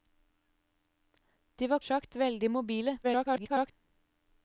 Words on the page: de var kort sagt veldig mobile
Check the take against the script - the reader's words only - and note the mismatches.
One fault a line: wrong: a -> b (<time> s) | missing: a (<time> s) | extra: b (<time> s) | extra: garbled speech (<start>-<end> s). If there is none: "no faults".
missing: kort (1.8 s)
extra: garbled speech (3.0-3.7 s)